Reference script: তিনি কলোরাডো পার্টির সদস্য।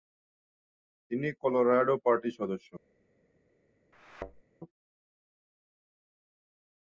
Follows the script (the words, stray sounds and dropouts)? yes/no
no